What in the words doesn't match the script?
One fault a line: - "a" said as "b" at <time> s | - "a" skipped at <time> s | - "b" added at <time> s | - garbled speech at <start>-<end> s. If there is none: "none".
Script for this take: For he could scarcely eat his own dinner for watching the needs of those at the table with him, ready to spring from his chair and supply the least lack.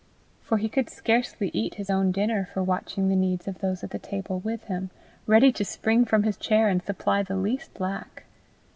none